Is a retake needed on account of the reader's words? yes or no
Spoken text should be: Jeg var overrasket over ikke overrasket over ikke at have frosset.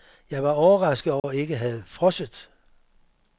yes